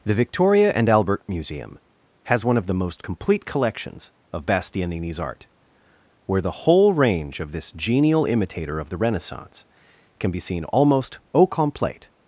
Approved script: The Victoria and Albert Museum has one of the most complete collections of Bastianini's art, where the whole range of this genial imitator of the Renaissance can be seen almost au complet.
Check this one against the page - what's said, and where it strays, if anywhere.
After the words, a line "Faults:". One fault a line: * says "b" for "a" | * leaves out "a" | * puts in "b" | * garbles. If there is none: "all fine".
The Victoria and Albert Museum has one of the most complete collections of Bastianini's art, where the whole range of this genial imitator of the Renaissance can be seen almost au complet.
Faults:
all fine